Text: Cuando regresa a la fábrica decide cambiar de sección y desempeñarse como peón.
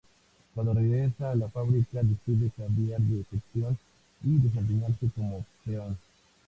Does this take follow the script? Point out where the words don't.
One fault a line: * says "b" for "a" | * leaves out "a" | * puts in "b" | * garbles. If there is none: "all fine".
all fine